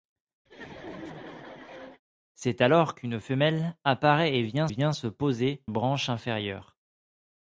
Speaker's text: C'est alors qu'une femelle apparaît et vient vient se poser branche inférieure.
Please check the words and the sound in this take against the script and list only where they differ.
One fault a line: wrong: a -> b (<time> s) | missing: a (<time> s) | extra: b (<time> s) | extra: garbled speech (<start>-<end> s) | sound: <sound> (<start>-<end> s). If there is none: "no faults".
sound: laugh (0.5-2.0 s)